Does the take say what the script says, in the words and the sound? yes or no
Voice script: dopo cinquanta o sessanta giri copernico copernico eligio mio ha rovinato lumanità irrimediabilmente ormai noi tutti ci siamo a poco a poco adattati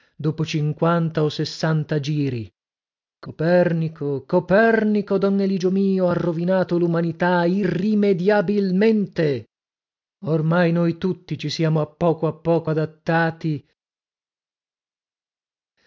no